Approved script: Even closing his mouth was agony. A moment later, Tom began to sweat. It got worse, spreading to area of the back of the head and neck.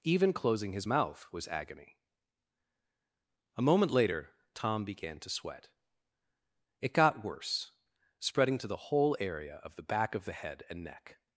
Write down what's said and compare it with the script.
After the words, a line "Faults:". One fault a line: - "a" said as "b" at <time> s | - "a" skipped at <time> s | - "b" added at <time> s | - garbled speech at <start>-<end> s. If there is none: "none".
Even closing his mouth was agony. A moment later, Tom began to sweat. It got worse, spreading to the whole area of the back of the head and neck.
Faults:
- "the whole" added at 8.7 s